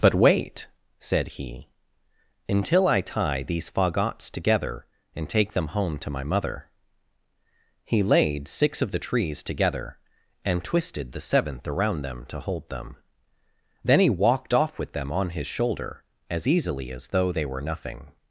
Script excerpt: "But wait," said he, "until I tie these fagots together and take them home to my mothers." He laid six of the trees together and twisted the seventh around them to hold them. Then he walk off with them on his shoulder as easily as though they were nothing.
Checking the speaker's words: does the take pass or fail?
fail